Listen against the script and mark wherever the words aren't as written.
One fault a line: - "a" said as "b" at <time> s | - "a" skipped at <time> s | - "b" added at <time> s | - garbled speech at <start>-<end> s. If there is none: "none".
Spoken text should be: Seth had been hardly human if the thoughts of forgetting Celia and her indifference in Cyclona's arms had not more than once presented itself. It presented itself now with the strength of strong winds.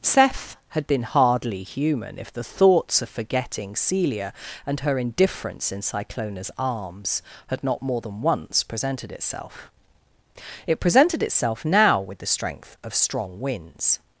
none